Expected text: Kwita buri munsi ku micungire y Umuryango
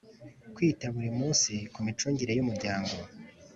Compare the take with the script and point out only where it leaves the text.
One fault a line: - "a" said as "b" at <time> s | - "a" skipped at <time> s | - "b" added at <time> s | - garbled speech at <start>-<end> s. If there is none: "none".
none